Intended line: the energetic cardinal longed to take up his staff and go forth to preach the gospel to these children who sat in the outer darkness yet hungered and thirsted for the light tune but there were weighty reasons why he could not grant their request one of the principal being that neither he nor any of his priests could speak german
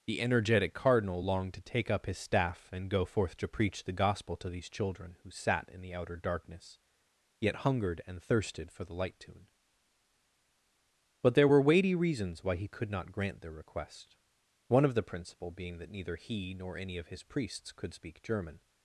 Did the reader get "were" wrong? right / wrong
right